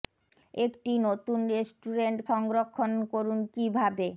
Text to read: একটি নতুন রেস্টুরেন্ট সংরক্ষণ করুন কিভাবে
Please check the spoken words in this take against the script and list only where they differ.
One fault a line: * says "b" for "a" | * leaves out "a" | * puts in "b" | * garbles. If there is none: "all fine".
all fine